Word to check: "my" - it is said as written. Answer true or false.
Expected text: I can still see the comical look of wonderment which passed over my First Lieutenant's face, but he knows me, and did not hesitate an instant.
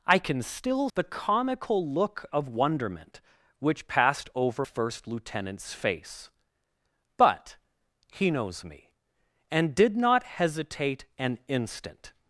false